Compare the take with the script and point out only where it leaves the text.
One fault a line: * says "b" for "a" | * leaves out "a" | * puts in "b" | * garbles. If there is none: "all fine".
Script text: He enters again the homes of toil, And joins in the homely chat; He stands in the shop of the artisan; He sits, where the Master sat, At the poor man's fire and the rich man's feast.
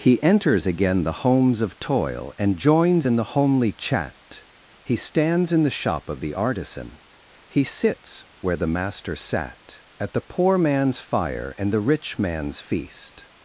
all fine